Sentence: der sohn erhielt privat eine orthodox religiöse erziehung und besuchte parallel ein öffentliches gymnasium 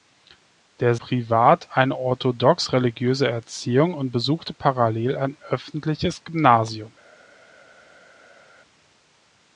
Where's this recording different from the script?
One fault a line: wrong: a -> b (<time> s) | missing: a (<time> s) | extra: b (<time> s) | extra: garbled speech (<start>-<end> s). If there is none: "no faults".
missing: sohn erhielt (0.9 s)